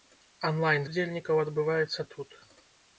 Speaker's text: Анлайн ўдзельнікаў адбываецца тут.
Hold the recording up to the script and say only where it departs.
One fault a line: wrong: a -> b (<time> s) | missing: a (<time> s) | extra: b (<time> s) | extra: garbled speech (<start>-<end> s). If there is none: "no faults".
no faults